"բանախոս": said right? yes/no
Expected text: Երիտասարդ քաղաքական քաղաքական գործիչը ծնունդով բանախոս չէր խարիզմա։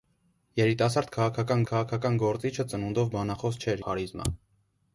yes